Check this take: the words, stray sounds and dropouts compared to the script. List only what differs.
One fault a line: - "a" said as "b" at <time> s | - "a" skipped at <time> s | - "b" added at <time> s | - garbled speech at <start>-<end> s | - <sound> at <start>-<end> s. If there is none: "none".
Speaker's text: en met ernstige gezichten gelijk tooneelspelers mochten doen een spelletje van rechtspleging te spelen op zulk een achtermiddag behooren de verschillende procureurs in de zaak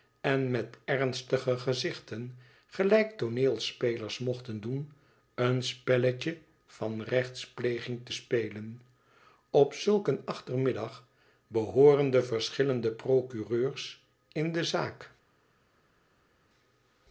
none